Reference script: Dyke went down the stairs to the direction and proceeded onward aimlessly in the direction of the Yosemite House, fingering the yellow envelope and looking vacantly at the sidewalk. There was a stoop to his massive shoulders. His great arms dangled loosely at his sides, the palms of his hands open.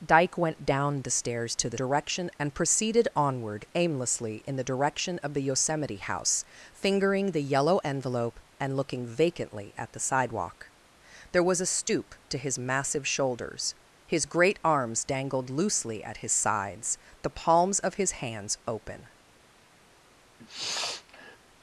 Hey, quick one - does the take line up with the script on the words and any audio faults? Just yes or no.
no